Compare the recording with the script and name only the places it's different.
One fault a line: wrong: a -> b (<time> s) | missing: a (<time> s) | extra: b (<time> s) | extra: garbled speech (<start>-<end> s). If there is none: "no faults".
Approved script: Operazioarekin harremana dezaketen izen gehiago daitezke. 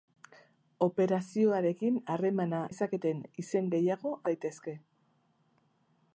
no faults